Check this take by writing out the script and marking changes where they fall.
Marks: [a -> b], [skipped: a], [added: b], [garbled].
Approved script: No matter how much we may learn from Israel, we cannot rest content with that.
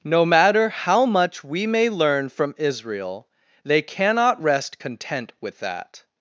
No matter how much we may learn from Israel, [we -> they] cannot rest content with that.